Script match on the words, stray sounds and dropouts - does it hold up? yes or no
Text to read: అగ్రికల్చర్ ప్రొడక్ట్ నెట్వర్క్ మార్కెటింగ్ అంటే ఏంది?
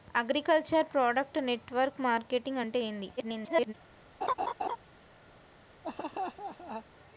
no